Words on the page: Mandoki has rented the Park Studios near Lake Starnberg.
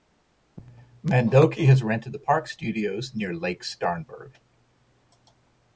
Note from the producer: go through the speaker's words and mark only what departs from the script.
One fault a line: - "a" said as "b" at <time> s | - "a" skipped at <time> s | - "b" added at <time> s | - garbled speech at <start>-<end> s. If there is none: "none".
none